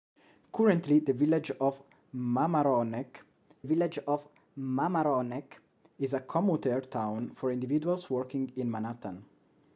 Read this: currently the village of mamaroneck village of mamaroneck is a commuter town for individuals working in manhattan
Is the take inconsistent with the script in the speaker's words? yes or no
no